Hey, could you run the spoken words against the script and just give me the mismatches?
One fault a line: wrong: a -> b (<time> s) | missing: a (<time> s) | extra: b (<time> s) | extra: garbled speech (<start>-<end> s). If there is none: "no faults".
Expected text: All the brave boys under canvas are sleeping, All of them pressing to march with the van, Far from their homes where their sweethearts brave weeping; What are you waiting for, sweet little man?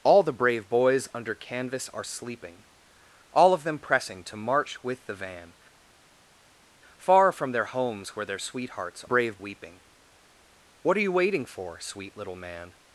no faults